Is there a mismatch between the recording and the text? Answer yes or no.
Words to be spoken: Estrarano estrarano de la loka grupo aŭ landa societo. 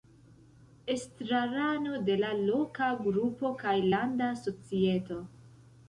yes